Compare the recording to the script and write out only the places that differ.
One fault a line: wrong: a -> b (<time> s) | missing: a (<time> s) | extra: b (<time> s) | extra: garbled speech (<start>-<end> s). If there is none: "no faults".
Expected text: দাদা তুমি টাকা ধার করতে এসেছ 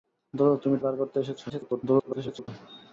missing: টাকা (0.8 s)
extra: garbled speech (1.5-2.5 s)